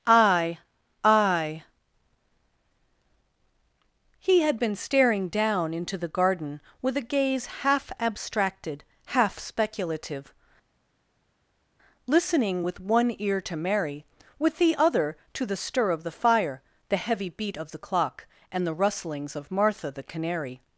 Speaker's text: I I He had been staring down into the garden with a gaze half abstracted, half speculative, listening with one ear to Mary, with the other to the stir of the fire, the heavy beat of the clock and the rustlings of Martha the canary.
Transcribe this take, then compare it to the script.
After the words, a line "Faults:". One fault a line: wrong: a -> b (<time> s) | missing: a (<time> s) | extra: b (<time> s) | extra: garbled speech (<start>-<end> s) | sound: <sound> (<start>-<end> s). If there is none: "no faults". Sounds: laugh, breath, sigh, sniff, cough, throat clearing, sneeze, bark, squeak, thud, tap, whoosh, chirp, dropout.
I I He had been staring down into the garden with a gaze half abstracted, half speculative, listening with one ear to Mary, with the other to the stir of the fire, the heavy beat of the clock and the rustlings of Martha the canary.
Faults:
no faults